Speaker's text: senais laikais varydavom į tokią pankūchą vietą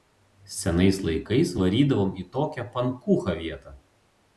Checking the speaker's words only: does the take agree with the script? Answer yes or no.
yes